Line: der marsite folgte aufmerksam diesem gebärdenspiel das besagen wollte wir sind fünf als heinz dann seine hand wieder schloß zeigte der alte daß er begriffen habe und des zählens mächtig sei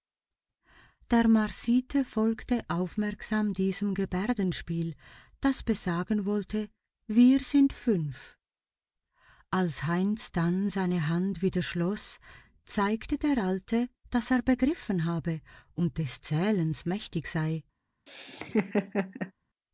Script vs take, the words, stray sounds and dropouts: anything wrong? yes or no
yes